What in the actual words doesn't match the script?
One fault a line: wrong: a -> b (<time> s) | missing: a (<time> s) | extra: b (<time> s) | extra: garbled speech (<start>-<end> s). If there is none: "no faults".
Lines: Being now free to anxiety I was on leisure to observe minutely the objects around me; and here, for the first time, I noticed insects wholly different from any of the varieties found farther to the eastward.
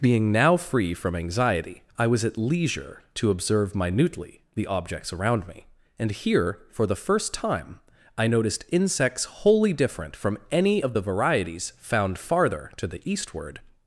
wrong: to -> from (0.9 s)
wrong: on -> at (2.2 s)